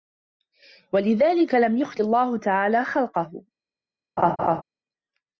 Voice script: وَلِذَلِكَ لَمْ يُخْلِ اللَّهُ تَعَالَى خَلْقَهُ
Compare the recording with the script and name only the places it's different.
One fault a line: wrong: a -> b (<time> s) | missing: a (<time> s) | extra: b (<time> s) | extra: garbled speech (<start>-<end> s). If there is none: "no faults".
no faults